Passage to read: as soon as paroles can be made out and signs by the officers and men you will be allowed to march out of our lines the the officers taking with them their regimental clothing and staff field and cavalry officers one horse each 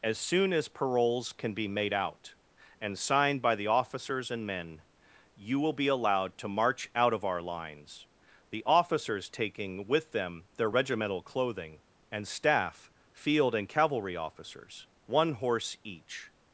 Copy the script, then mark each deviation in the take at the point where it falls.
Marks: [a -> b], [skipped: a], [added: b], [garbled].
as soon as paroles can be made out and [signs -> signed] by the officers and men you will be allowed to march out of our lines the [skipped: the] officers taking with them their regimental clothing and staff field and cavalry officers one horse each